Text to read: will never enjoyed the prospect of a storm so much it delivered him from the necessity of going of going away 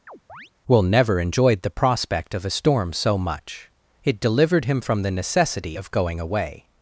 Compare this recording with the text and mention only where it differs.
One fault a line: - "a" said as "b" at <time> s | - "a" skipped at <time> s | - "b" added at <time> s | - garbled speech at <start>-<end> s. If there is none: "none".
- "of going" skipped at 6.2 s